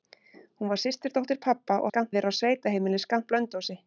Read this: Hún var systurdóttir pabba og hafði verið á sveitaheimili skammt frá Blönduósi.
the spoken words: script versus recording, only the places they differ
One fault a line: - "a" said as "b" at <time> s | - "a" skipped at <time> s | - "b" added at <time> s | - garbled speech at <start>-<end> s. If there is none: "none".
- "hafði" said as "skammt" at 1.9 s
- "frá" skipped at 3.3 s